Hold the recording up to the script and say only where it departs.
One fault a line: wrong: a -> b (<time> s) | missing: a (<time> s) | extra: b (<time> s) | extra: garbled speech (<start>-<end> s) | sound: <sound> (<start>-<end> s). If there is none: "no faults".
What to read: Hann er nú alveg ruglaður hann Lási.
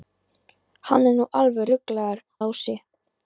missing: hann (2.2 s)